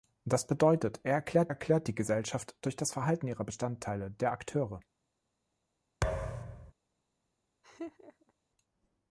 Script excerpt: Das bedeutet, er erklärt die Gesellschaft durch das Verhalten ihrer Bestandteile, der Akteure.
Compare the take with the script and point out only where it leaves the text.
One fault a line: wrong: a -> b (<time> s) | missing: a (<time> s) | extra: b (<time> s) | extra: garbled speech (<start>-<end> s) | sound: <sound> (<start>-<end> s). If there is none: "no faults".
extra: erklärt (1.5 s)
sound: thud (6.0-6.7 s)
sound: laugh (7.6-8.3 s)